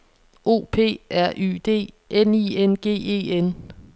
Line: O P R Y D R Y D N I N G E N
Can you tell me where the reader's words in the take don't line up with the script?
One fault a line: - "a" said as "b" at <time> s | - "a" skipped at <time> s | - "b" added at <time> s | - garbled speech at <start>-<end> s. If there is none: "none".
- "R Y D" skipped at 1.9 s